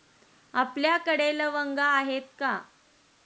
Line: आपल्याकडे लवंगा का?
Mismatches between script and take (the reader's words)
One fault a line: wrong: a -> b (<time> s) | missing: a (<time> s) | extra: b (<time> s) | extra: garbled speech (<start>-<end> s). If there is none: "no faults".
extra: आहेत (1.9 s)